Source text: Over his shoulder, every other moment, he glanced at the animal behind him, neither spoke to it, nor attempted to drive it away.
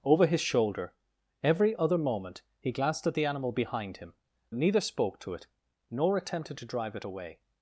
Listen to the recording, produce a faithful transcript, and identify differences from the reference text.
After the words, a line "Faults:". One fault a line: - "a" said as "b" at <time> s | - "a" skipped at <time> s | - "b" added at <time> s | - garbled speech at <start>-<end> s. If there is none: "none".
Over his shoulder, every other moment, he glanced at the animal behind him, neither spoke to it, nor attempted to drive it away.
Faults:
none